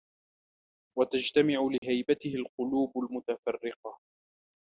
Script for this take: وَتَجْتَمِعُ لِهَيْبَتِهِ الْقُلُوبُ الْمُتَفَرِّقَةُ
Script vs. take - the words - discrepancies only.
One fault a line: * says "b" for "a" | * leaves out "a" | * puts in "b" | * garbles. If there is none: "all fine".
all fine